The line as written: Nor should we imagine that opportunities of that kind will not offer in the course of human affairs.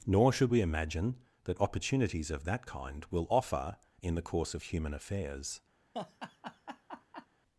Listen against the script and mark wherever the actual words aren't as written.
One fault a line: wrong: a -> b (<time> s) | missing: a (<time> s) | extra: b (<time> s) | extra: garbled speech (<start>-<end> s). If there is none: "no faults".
missing: not (3.3 s)